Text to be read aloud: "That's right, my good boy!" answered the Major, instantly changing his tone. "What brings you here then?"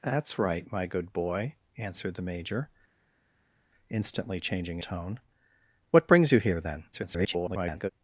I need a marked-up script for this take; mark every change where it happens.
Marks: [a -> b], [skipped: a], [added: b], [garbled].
"That's right, my good boy!" answered the Major, instantly changing [skipped: his] tone. "What brings you here then?" [garbled]